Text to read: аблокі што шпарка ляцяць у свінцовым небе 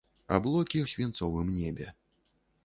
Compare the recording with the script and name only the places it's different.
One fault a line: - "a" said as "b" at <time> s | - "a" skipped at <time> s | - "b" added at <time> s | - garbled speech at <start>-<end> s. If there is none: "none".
- "што шпарка ляцяць" skipped at 0.8 s